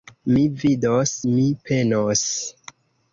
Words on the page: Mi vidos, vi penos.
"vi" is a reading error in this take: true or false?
true